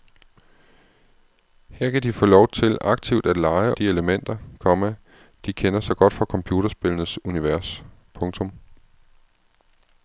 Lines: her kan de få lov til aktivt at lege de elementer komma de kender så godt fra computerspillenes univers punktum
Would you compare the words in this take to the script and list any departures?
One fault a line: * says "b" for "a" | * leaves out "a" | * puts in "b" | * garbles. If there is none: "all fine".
all fine